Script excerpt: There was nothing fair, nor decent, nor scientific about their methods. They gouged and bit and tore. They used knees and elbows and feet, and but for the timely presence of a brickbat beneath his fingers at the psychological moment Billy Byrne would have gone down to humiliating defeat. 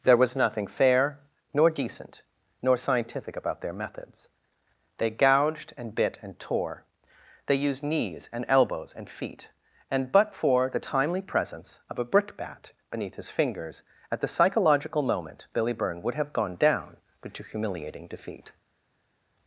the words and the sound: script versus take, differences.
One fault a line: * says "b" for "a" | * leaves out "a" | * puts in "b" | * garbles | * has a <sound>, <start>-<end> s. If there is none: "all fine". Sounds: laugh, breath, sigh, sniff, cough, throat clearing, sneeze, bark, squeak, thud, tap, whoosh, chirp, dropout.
* puts in "but"